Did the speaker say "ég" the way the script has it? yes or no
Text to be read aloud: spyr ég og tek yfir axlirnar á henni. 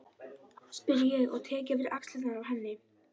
yes